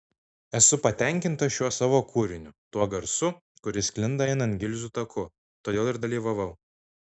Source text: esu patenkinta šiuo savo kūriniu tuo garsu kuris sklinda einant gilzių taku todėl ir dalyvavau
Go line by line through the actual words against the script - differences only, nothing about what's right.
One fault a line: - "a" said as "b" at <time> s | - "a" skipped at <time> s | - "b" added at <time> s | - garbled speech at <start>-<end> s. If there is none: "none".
none